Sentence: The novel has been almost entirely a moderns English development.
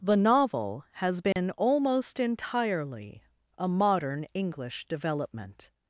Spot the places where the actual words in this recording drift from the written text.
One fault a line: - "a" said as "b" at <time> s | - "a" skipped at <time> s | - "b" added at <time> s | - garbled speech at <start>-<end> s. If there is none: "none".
- "moderns" said as "modern" at 3.7 s